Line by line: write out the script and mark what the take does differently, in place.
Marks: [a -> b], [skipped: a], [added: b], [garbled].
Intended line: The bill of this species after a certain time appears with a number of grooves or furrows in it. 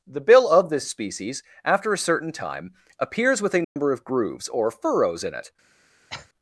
The bill of this species after a certain time appears with a number of grooves or furrows in it.